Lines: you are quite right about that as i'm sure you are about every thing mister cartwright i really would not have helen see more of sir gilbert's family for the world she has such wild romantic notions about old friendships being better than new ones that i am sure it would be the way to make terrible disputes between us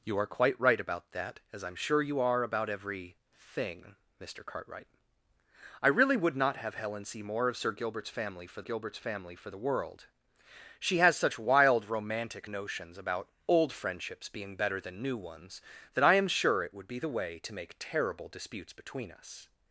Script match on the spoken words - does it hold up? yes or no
no